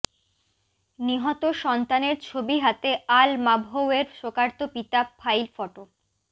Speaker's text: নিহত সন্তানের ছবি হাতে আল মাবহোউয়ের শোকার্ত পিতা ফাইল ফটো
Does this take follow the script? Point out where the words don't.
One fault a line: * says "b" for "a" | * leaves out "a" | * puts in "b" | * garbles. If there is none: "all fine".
all fine